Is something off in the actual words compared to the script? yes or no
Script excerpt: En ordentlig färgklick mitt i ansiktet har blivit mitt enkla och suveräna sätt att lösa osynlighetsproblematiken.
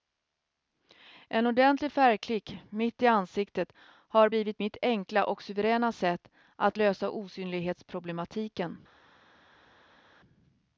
no